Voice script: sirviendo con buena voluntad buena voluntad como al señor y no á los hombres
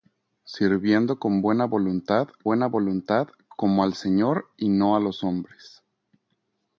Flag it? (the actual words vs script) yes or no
no